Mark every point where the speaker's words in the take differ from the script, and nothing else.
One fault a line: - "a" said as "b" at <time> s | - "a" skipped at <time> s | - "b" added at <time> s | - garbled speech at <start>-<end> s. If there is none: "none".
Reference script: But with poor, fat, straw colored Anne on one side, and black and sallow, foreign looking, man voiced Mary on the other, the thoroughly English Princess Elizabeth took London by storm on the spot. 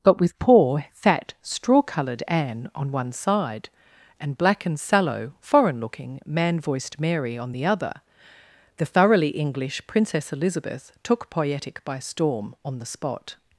- "London" said as "Poietic" at 11.3 s